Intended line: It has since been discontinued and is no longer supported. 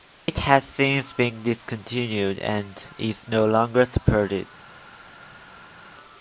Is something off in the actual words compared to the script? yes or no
no